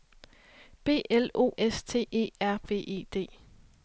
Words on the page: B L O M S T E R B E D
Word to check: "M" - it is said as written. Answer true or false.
false